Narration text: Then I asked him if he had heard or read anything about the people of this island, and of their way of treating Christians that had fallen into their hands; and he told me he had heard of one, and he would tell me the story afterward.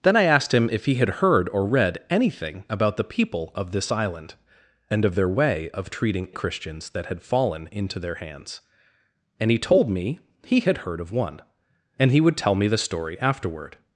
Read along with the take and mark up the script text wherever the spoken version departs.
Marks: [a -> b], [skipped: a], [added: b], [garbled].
Then I asked him if he had heard or read anything about the people of this island, and of their way of treating Christians that had fallen into their hands; and he told me he had heard of one, and he would tell me the story afterward.